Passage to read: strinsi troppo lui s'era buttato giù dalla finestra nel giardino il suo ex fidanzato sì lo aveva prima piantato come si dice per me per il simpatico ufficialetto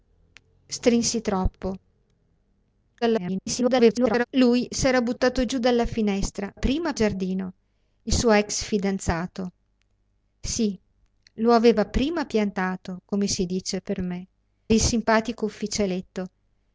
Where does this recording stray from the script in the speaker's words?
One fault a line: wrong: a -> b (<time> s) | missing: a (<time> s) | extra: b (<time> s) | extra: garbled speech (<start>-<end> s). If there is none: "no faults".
extra: garbled speech (3.0-4.2 s)
wrong: nel -> prima (6.5 s)
missing: per (14.3 s)